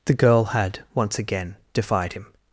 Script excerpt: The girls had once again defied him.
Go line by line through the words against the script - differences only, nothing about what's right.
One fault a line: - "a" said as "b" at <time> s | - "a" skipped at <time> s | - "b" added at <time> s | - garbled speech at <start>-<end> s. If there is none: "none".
- "girls" said as "girl" at 0.1 s